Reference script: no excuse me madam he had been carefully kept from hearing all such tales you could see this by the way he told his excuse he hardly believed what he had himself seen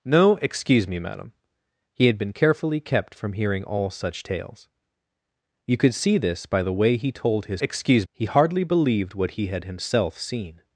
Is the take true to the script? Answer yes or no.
yes